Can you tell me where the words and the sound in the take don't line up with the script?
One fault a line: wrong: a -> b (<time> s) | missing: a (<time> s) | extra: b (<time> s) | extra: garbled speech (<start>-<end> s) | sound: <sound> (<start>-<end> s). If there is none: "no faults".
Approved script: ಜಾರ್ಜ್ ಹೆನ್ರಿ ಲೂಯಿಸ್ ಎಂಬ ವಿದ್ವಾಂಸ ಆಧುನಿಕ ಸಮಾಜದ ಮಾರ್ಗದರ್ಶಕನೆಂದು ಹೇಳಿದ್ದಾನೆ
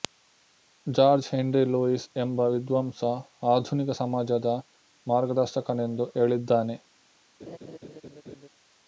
sound: laugh (7.4-8.5 s)